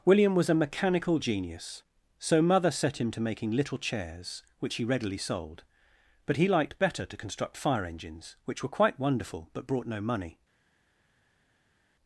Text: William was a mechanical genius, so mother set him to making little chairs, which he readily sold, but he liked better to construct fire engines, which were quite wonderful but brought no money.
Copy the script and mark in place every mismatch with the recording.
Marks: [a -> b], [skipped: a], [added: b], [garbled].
William was a mechanical genius, so mother set him to making little chairs, which he readily sold, but he liked better to construct fire engines, which were quite wonderful but brought no money.